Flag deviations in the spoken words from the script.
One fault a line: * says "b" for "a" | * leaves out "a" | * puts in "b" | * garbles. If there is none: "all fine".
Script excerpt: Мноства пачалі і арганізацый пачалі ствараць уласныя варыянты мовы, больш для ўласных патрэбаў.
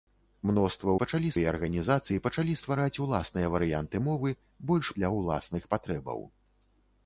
all fine